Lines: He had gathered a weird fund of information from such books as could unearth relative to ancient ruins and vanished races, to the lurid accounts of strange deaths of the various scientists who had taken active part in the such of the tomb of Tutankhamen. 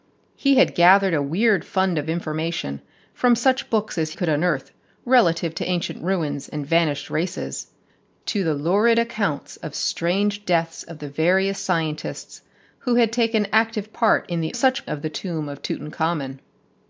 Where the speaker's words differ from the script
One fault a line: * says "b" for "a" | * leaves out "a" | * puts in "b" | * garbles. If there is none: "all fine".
all fine